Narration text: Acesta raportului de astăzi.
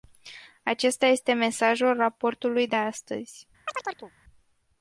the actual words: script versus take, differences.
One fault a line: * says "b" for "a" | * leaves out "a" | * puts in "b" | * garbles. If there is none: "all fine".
* puts in "este mesajul"